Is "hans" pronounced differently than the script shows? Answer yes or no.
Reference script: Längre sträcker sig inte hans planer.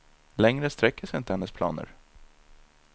yes